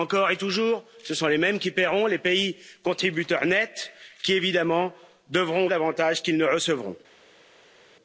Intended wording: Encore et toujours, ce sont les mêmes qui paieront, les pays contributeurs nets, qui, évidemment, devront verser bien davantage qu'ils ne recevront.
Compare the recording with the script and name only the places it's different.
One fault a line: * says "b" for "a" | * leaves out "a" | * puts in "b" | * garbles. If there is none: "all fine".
* leaves out "verser bien"